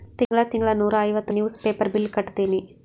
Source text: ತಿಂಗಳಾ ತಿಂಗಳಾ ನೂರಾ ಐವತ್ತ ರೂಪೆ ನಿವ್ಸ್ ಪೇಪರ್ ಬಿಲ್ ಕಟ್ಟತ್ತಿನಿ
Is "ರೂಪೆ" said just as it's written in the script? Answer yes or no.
no